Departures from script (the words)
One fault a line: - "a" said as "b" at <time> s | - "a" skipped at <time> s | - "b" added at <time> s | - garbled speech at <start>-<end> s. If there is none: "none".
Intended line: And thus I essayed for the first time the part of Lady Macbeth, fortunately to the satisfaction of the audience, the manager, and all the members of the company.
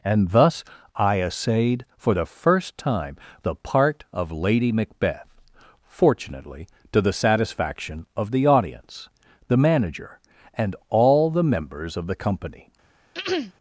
none